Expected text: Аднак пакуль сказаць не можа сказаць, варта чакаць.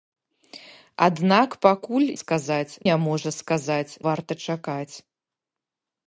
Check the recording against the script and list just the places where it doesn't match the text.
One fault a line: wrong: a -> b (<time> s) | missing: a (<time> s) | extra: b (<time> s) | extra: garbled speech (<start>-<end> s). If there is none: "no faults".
no faults